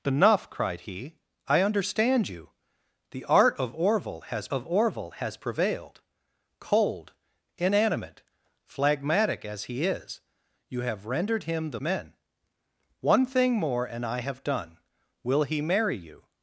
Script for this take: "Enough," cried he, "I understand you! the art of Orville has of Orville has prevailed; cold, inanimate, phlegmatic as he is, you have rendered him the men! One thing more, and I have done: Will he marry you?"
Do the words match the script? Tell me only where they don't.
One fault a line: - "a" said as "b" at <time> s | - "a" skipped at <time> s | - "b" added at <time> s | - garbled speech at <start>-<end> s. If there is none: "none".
none